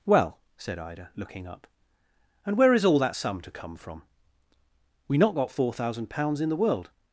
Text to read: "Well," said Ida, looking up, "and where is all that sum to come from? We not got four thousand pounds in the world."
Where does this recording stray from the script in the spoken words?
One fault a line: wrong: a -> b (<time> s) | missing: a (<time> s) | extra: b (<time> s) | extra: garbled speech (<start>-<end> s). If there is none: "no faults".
no faults